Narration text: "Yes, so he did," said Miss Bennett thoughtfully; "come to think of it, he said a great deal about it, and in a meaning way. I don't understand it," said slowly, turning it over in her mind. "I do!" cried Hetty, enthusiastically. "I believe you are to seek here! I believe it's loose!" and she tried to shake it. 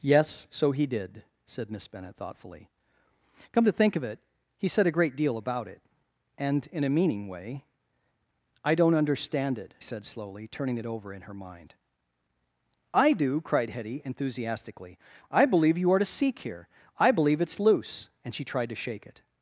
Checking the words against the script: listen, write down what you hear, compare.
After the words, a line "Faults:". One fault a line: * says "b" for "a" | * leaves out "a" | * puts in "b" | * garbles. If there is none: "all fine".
"Yes, so he did," said Miss Bennett thoughtfully; "come to think of it, he said a great deal about it, and in a meaning way. I don't understand it," said slowly, turning it over in her mind. "I do!" cried Hetty, enthusiastically. "I believe you are to seek here! I believe it's loose!" and she tried to shake it.
Faults:
all fine